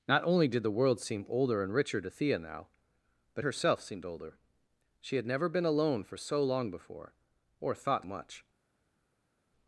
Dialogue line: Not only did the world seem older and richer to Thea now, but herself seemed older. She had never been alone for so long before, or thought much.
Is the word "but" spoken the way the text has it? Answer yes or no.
yes